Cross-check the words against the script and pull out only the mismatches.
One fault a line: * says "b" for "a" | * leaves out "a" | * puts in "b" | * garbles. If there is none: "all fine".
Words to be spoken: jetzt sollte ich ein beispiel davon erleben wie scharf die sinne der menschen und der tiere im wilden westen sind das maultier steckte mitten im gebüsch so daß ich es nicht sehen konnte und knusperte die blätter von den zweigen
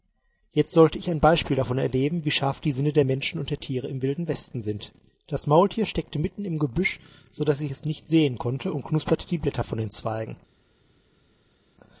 all fine